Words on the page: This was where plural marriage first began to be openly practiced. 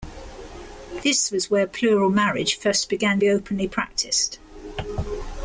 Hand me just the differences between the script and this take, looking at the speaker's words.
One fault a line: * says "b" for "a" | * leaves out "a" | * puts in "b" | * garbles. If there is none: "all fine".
* leaves out "to"